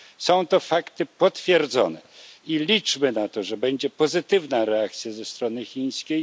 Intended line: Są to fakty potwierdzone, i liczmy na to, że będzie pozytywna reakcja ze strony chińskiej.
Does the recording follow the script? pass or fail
pass